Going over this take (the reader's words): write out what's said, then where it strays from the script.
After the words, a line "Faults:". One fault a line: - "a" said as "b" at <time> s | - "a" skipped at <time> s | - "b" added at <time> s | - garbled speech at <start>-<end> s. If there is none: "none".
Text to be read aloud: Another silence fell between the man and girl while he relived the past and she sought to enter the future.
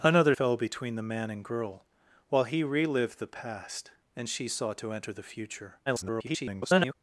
Another fell between the man and girl while he relived the past and she sought to enter the future. [garbled]
Faults:
- "silence" skipped at 0.3 s
- garbled speech at 5.9-6.9 s